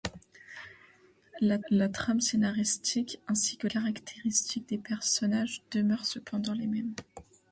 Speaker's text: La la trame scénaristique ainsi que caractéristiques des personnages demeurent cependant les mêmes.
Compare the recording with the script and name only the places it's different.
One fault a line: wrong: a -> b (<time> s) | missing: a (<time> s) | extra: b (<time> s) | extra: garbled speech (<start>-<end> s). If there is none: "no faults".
no faults